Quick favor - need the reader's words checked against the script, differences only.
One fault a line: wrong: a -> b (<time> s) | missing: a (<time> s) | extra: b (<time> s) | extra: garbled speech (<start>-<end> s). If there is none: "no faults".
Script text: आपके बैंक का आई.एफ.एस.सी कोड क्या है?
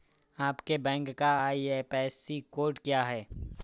no faults